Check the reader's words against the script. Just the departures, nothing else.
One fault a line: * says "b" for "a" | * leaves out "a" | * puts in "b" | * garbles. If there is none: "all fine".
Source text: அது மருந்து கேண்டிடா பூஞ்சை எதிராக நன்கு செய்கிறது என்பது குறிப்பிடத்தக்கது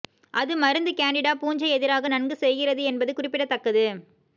all fine